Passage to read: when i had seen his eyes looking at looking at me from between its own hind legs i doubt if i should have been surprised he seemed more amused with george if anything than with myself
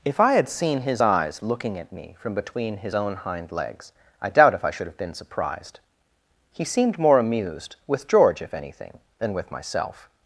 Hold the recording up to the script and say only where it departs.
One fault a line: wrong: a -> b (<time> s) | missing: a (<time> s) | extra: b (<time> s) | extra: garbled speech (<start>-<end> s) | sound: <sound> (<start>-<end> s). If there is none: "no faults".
wrong: when -> if (0.0 s)
missing: looking at (1.9 s)
wrong: its -> his (2.8 s)